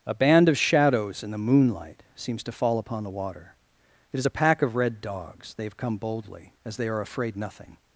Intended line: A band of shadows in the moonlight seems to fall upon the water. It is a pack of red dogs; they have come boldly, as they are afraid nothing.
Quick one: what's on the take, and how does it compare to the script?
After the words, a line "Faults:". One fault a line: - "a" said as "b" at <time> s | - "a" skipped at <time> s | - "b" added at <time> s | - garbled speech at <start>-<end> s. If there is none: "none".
A band of shadows in the moonlight seems to fall upon the water. It is a pack of red dogs; they have come boldly, as they are afraid nothing.
Faults:
none